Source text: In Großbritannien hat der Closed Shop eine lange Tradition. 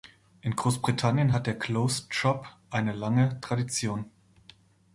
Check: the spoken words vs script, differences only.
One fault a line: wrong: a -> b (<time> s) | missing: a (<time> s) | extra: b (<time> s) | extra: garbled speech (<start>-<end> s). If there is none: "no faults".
no faults